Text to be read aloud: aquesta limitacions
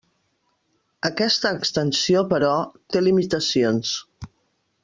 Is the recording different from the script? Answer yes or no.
yes